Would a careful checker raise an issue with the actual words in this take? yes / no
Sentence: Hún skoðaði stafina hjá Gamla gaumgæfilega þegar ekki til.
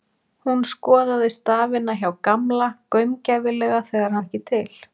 no